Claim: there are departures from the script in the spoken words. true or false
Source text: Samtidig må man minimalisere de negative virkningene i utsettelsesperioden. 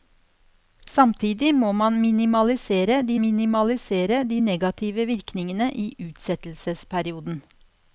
true